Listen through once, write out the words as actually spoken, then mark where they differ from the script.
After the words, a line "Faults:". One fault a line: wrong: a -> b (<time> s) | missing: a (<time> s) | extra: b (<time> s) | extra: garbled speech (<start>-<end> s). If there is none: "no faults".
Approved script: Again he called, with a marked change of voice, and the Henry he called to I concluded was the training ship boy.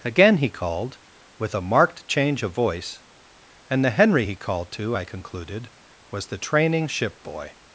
Again he called, with a marked change of voice, and the Henry he called to I concluded was the training ship boy.
Faults:
no faults